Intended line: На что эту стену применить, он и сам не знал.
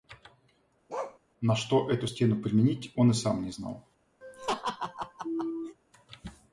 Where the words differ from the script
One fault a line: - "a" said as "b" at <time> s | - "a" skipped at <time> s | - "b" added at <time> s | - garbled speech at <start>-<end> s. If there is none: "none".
none